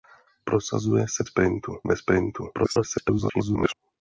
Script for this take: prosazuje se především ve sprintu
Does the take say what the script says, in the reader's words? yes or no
no